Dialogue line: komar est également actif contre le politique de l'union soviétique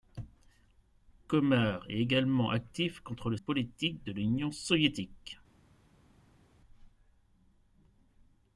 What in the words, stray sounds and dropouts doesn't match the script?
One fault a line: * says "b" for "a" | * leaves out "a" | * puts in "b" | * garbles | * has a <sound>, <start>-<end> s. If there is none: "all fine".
all fine